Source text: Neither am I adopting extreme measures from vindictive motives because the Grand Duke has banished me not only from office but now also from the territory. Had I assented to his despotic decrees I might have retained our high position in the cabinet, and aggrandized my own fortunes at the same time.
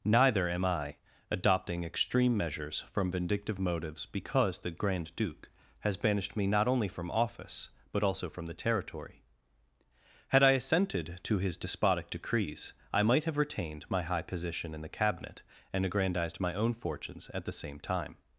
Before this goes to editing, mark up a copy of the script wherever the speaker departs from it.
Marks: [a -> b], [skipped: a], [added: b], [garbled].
Neither am I adopting extreme measures from vindictive motives because the Grand Duke has banished me not only from office but [skipped: now] also from the territory. Had I assented to his despotic decrees I might have retained [our -> my] high position in the cabinet, and aggrandized my own fortunes at the same time.